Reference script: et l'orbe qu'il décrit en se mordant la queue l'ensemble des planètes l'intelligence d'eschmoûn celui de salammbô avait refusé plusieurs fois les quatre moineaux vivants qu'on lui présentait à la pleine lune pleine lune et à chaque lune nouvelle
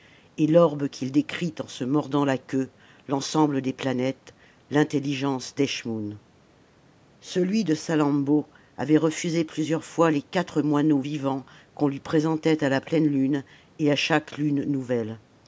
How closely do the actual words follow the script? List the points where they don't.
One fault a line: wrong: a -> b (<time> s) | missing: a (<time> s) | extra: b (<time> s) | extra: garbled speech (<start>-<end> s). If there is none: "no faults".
missing: pleine lune (13.4 s)